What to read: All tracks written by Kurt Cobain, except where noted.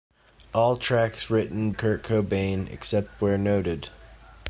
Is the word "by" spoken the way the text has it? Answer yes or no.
no